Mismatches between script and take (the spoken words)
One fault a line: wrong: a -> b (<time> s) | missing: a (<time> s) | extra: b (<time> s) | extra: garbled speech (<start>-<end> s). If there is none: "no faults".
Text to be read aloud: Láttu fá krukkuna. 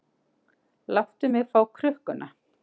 extra: mig (1.3 s)